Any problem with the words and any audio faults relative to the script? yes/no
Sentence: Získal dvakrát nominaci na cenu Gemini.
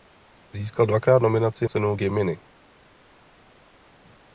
yes